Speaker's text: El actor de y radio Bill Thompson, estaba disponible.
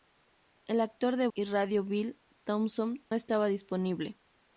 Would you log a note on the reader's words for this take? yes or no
no